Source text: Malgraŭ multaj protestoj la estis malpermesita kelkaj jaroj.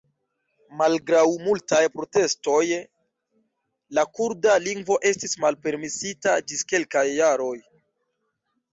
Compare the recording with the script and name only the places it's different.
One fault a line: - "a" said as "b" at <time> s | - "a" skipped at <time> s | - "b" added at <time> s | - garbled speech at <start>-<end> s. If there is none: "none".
- "kurda lingvo" added at 4.2 s
- "ĝis" added at 6.5 s